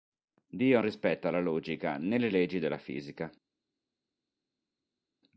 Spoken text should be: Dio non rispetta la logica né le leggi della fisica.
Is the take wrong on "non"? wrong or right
wrong